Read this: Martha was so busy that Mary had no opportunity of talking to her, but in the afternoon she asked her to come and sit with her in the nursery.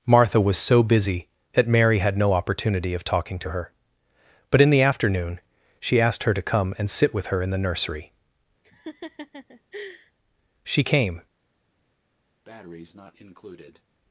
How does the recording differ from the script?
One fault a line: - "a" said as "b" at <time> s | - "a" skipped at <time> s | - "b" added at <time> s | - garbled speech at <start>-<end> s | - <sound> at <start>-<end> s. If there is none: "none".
- laugh at 8.6-10.1 s
- "She came" added at 10.6 s
- breath at 12.4-13.8 s